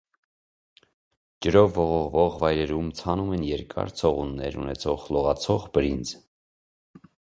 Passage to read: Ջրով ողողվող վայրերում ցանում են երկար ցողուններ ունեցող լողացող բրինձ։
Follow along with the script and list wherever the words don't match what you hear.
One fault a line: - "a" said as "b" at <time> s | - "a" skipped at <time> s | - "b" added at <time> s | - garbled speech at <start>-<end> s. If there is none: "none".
none